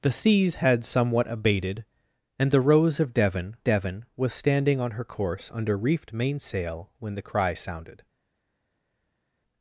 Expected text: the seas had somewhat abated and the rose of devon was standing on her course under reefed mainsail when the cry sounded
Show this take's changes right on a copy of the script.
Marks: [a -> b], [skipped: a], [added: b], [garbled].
the seas had somewhat abated and the rose of devon [added: devon] was standing on her course under reefed mainsail when the cry sounded